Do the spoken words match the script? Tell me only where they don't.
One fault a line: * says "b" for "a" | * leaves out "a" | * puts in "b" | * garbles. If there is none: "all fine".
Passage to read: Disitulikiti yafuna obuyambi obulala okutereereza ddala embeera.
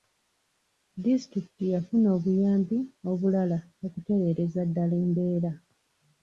all fine